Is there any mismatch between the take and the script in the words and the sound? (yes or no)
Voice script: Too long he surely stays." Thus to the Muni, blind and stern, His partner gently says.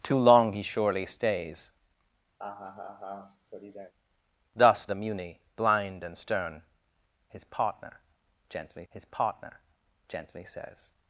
yes